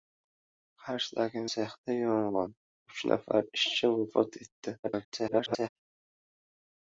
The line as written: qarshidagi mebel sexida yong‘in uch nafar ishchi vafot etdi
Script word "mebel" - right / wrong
wrong